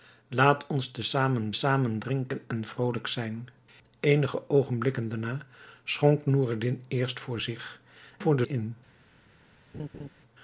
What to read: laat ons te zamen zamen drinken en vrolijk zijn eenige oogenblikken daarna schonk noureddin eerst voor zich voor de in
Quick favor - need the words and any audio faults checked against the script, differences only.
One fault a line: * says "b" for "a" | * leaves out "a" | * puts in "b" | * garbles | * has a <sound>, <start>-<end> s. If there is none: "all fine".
* has a laugh, 9.7-10.1 s